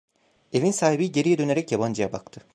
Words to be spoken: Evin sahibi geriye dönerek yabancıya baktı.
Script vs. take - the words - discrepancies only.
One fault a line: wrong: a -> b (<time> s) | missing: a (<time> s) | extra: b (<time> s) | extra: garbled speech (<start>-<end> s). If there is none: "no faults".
no faults